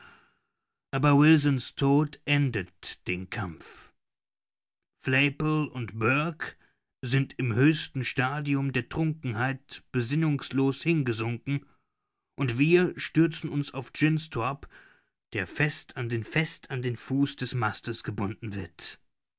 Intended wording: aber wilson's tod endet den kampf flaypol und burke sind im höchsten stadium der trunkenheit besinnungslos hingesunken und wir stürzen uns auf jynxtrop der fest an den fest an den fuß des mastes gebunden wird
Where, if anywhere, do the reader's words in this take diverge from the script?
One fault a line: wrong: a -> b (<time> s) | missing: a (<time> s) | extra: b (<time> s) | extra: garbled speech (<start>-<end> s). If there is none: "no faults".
no faults